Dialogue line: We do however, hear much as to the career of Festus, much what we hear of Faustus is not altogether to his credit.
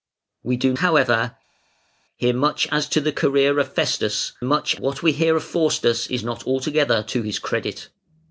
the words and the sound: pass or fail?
pass